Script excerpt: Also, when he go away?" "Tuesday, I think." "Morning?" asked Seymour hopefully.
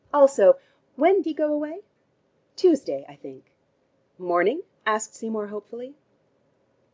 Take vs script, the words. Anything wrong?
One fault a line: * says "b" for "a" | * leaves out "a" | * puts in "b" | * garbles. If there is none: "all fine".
all fine